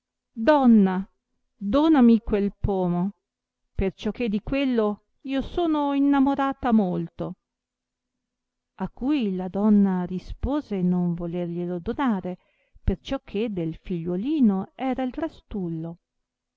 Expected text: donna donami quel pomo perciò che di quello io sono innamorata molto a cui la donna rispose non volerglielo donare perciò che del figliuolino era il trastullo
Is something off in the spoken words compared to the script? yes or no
no